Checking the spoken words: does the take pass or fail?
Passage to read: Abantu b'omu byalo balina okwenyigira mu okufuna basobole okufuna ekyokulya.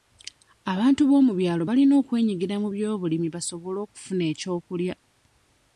fail